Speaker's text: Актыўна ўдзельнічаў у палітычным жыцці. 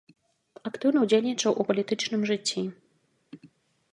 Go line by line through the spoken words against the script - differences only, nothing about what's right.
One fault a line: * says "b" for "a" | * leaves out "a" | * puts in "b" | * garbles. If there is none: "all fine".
all fine